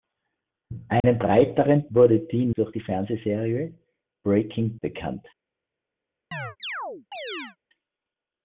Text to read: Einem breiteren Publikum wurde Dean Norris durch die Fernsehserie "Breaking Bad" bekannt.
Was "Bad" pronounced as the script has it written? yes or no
no